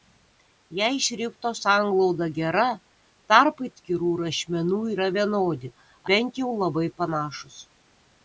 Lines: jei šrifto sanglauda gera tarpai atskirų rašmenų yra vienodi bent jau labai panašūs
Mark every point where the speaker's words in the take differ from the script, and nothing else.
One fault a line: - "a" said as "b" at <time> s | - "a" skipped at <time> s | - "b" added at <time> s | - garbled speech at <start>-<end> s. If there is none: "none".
none